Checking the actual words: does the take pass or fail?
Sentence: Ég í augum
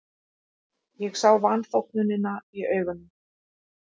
fail